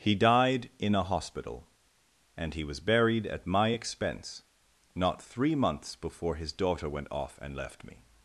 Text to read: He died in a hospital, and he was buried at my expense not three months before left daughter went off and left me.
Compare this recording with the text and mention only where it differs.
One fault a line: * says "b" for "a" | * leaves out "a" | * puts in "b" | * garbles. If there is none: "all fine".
* says "his" for "left"